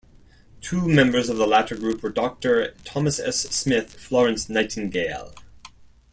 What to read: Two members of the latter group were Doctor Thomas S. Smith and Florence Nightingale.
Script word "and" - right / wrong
wrong